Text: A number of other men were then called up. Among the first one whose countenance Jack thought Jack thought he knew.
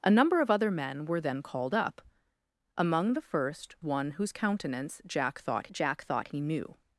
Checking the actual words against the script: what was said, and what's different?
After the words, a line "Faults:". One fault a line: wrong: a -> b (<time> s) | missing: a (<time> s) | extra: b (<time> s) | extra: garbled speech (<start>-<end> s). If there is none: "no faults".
A number of other men were then called up. Among the first one whose countenance Jack thought Jack thought he knew.
Faults:
no faults